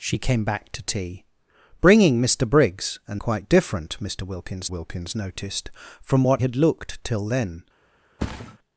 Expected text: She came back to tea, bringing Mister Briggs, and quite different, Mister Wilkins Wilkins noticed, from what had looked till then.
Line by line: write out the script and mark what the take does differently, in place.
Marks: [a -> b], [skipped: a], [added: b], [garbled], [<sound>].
She came back to tea, bringing Mister Briggs, and quite different, Mister Wilkins Wilkins noticed, from what had looked till then. [thud]